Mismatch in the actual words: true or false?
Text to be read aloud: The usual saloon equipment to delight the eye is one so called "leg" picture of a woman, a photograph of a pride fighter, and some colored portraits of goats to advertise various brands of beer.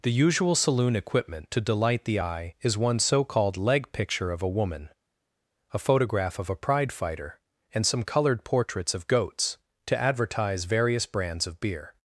false